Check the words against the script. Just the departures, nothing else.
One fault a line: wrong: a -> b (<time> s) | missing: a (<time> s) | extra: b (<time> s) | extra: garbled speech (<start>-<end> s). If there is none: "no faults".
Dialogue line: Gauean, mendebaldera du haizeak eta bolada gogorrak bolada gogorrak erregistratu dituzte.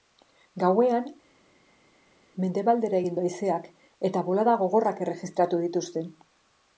extra: egin (3.0 s)
missing: bolada gogorrak (5.0 s)